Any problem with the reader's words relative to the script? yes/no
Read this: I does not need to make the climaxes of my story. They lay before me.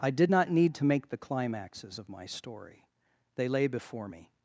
yes